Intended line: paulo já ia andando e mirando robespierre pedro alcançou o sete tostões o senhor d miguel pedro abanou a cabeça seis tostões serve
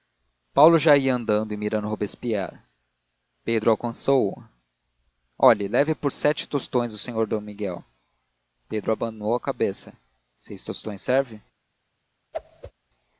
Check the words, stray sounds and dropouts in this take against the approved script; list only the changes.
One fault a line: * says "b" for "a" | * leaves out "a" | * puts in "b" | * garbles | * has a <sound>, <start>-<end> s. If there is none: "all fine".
* puts in "olhe leve por"
* has a whoosh, 12.3-12.7 s